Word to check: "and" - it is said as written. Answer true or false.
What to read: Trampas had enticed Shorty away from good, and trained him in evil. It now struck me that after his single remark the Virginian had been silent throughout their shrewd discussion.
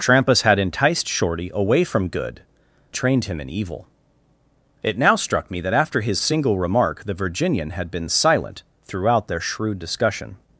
false